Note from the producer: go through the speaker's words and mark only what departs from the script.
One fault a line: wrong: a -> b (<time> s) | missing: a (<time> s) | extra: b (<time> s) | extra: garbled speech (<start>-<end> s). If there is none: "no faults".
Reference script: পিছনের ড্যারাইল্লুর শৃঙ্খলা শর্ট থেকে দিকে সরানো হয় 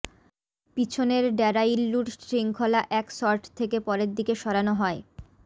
extra: এক (2.9 s)
extra: পরের (3.9 s)